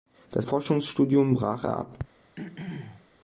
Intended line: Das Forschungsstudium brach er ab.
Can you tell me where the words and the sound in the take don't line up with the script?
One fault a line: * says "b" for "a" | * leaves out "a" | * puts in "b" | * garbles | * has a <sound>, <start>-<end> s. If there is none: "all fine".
* has a throat clearing, 2.4-3.1 s